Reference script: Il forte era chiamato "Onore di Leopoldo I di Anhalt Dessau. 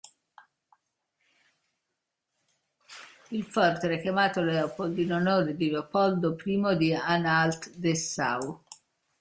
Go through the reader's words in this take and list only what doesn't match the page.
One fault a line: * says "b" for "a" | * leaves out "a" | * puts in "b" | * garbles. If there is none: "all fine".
* puts in "Leopold in"